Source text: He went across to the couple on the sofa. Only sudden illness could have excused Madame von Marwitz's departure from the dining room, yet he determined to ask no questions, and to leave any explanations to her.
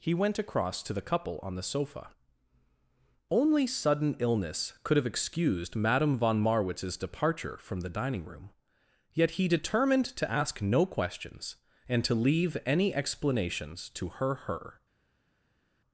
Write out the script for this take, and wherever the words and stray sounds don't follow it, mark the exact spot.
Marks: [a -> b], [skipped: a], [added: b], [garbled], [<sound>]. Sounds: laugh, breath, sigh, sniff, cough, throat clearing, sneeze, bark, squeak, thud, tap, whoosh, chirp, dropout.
He went across to the couple on the sofa. Only sudden illness could have excused Madame von Marwitz's departure from the dining room, yet he determined to ask no questions, and to leave any explanations to her. [added: her]